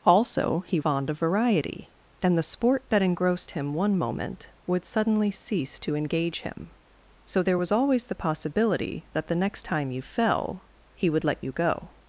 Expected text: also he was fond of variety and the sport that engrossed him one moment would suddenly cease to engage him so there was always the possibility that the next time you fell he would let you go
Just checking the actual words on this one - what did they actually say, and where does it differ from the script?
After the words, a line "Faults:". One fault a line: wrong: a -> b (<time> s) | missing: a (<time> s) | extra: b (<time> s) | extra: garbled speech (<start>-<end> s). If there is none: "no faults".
also he fond of variety and the sport that engrossed him one moment would suddenly cease to engage him so there was always the possibility that the next time you fell he would let you go
Faults:
missing: was (0.8 s)